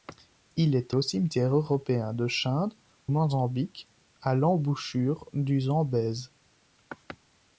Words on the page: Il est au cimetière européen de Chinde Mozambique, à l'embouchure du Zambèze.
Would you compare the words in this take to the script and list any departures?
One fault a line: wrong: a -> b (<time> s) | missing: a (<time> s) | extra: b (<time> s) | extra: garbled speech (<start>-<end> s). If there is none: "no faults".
no faults